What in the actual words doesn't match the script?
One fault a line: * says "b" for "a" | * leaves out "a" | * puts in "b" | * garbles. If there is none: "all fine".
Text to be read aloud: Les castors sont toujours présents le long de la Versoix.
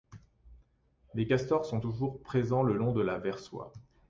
all fine